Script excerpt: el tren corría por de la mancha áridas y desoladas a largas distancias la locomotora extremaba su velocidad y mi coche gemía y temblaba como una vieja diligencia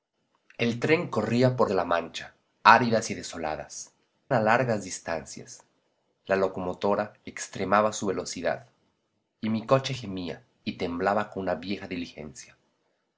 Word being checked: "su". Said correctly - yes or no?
yes